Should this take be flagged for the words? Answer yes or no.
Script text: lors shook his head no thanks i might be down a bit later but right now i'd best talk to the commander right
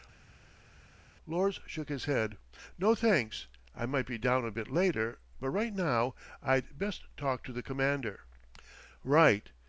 no